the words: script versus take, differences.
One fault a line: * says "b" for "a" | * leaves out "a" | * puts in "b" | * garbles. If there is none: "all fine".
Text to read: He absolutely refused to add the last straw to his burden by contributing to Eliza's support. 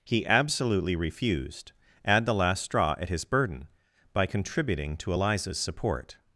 * leaves out "to"
* says "at" for "to"